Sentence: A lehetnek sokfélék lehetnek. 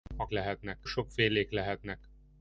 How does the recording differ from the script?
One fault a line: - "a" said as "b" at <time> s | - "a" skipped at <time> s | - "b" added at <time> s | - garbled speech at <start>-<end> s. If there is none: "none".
none